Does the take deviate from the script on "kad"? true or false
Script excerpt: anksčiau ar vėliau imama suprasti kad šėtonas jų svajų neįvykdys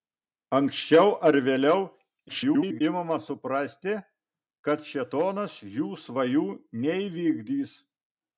false